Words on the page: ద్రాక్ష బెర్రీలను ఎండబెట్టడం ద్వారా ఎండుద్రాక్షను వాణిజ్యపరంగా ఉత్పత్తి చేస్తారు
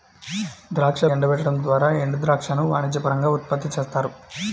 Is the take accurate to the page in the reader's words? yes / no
no